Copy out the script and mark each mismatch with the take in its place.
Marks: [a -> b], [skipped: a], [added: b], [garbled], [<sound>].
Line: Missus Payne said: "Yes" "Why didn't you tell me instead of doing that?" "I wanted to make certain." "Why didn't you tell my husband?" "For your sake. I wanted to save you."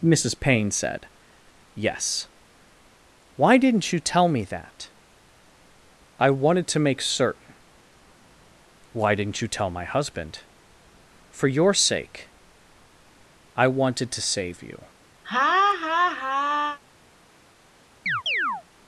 Missus Payne said: "Yes" "Why didn't you tell me [skipped: instead of doing] that?" "I wanted to make certain." "Why didn't you tell my husband?" "For your sake. I wanted to save you." [laugh] [chirp]